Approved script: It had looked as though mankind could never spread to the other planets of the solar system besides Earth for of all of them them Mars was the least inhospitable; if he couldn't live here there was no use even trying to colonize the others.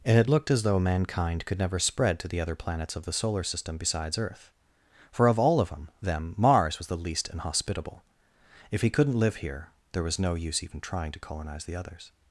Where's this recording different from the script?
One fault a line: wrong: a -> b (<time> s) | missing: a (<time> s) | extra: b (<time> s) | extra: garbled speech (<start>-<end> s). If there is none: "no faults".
no faults